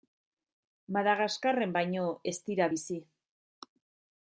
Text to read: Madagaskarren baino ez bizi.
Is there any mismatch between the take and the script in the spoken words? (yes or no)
yes